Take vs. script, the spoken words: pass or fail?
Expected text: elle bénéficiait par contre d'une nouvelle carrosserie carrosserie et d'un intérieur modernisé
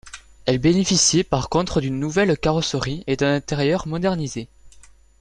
fail